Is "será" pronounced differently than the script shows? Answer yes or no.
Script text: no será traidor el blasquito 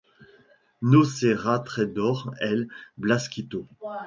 no